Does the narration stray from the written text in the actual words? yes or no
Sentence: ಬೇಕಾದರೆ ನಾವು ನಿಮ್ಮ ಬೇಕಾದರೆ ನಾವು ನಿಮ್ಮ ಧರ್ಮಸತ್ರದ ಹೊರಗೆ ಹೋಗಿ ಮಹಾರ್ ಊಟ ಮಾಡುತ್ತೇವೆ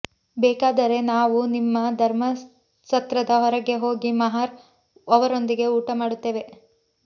yes